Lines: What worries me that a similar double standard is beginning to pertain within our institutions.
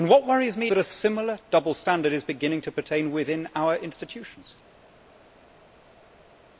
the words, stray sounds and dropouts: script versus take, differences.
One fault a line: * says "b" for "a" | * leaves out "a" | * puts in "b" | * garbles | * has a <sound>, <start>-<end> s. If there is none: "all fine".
all fine